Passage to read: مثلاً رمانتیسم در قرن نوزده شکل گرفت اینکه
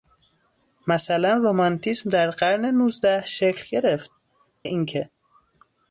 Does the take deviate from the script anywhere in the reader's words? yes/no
no